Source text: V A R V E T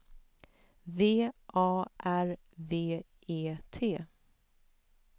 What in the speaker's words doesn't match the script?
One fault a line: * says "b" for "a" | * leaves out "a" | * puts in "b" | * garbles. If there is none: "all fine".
all fine